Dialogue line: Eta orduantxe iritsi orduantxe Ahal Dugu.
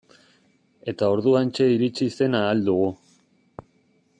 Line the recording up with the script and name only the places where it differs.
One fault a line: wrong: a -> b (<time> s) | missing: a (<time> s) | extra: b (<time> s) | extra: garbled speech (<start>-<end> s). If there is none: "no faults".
wrong: orduantxe -> zen (2.2 s)